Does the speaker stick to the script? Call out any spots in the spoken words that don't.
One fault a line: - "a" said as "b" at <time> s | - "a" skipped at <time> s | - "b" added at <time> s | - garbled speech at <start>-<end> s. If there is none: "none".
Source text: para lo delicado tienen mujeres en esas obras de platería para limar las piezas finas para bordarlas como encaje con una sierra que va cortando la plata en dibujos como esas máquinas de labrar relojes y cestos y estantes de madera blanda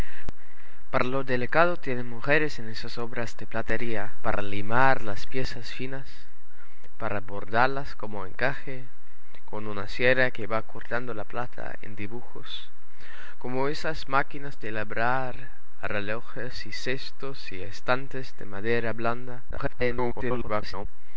- garbled speech at 19.5-20.9 s